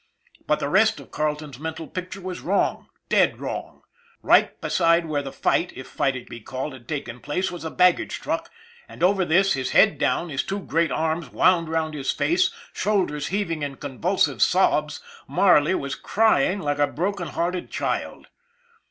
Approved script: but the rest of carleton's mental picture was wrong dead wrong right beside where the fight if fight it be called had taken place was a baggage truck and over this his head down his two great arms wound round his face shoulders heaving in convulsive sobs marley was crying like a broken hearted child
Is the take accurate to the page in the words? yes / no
yes